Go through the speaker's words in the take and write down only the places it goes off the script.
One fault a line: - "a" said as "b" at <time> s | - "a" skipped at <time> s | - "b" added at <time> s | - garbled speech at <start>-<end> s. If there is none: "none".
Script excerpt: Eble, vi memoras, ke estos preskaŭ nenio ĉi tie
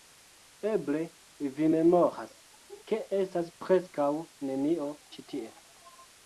- "estos" said as "estas" at 3.2 s